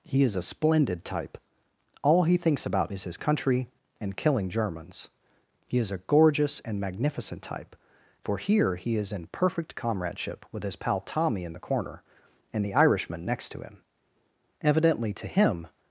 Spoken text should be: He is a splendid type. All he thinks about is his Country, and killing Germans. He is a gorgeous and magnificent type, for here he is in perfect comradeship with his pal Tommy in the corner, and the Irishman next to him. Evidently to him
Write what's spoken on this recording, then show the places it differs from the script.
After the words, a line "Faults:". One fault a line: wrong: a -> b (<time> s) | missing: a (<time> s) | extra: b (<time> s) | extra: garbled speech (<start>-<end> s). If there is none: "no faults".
He is a splendid type. All he thinks about is his Country, and killing Germans. He is a gorgeous and magnificent type, for here he is in perfect comradeship with his pal Tommy in the corner, and the Irishman next to him. Evidently to him
Faults:
no faults